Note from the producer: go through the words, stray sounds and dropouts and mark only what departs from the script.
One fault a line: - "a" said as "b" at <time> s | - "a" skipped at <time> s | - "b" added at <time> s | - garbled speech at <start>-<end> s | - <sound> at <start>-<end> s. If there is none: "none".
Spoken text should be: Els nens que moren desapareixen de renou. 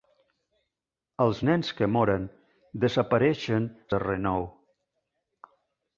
none